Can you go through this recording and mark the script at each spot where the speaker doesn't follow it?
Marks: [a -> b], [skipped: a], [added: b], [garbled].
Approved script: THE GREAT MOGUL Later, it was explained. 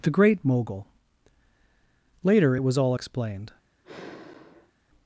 THE GREAT MOGUL Later, it was [added: all] explained.